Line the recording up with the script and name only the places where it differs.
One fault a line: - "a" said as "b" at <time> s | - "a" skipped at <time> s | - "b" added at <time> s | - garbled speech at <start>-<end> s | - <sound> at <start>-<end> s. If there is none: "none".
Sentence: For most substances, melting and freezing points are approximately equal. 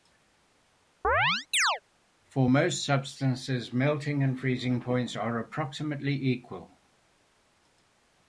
- chirp at 1.0-1.8 s